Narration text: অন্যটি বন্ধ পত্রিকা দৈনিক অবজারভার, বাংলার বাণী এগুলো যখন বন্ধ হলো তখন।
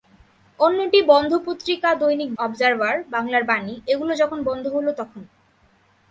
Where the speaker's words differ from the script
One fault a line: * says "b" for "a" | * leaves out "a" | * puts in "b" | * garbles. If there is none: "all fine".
all fine